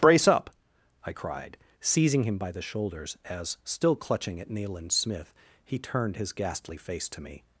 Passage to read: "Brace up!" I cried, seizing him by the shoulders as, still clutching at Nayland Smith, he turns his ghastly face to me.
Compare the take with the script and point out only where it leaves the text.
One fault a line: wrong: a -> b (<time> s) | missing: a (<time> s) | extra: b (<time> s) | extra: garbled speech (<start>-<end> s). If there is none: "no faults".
wrong: turns -> turned (5.8 s)